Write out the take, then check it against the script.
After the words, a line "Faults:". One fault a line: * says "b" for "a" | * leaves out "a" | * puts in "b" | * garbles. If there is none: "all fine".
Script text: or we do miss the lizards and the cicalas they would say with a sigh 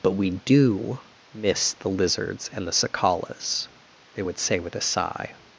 but we do miss the lizards and the cicalas they would say with a sigh
Faults:
* says "but" for "or"